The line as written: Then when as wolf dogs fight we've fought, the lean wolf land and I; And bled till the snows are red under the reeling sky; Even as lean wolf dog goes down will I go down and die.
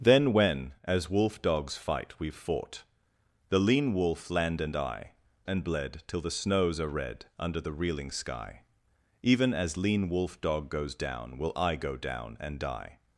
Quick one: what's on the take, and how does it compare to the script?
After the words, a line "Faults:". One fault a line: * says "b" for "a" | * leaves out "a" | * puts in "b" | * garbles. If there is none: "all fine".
Then when as wolf dogs fight we've fought, the lean wolf land and I; And bled till the snows are red under the reeling sky; Even as lean wolf dog goes down will I go down and die.
Faults:
all fine